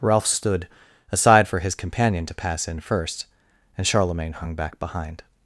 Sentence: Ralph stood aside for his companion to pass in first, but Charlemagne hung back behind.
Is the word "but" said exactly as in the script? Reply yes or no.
no